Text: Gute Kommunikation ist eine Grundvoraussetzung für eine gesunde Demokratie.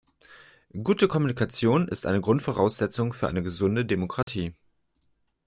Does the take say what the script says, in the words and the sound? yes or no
no